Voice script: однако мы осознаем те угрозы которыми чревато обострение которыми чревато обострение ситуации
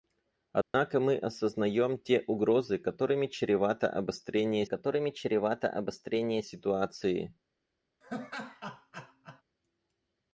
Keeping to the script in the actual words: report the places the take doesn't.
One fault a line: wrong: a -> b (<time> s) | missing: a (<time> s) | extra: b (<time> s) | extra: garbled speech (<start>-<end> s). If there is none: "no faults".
no faults